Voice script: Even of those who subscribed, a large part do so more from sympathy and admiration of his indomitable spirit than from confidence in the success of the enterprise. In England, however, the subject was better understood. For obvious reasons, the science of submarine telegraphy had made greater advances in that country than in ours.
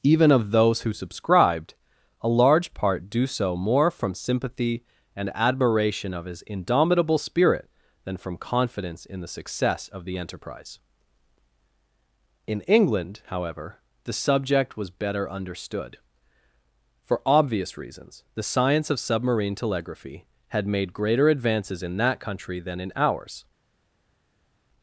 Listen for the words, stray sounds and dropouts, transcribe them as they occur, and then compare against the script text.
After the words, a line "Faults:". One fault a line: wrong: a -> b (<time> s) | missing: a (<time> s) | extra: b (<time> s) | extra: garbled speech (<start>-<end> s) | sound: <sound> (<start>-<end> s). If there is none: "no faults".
Even of those who subscribed, a large part do so more from sympathy and admiration of his indomitable spirit than from confidence in the success of the enterprise. In England, however, the subject was better understood. For obvious reasons, the science of submarine telegraphy had made greater advances in that country than in ours.
Faults:
no faults